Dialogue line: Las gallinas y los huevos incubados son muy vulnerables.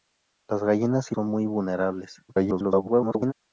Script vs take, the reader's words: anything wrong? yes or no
yes